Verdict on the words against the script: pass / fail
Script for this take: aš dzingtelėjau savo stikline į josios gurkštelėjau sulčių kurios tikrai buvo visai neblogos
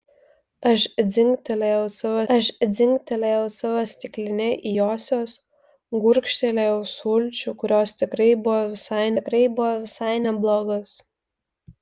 fail